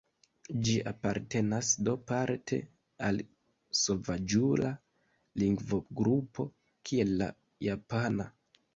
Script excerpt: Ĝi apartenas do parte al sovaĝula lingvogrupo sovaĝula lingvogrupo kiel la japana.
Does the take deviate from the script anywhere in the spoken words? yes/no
yes